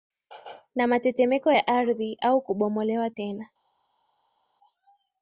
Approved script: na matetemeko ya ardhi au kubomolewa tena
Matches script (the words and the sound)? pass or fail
pass